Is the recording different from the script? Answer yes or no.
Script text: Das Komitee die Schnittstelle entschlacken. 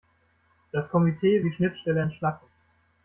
no